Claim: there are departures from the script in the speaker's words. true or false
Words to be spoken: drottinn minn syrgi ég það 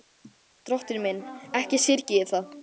true